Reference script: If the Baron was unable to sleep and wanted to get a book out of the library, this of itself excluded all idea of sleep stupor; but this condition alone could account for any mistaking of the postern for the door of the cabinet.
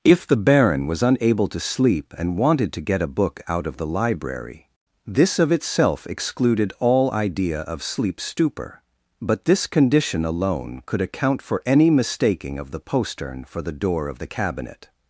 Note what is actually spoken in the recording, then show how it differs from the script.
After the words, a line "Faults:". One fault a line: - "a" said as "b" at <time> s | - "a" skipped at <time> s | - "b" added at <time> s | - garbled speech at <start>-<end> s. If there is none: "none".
If the Baron was unable to sleep and wanted to get a book out of the library, this of itself excluded all idea of sleep stupor; but this condition alone could account for any mistaking of the postern for the door of the cabinet.
Faults:
none